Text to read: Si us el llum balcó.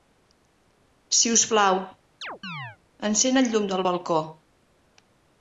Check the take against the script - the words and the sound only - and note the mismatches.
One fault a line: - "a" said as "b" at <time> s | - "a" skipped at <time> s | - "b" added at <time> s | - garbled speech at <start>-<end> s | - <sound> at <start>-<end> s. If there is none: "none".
- "plau encén" added at 1.5 s
- chirp at 2.2-2.8 s
- "del" added at 3.7 s